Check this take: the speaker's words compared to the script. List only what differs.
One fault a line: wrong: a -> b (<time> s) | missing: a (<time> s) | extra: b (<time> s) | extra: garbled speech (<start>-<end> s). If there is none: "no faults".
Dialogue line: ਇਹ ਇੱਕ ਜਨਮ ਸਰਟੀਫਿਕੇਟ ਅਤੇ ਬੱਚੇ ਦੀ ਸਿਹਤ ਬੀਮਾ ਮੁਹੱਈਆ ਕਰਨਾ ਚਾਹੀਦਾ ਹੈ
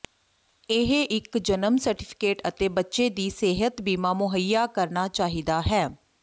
no faults